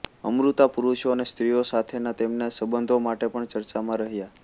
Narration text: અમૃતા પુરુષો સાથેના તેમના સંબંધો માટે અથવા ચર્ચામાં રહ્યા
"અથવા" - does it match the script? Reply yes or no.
no